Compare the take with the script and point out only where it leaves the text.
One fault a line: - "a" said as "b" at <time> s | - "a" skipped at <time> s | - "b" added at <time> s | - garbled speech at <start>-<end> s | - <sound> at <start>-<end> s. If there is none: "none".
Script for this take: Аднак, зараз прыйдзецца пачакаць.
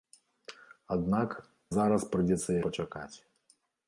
none